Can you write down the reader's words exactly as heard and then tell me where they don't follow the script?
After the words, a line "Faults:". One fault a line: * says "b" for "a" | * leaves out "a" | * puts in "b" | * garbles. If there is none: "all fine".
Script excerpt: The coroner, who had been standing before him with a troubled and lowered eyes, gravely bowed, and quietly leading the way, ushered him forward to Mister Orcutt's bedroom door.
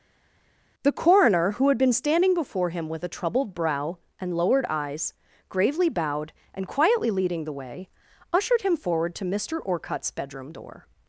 The coroner, who had been standing before him with a troubled brow and lowered eyes, gravely bowed, and quietly leading the way, ushered him forward to Mister Orcutt's bedroom door.
Faults:
* puts in "brow"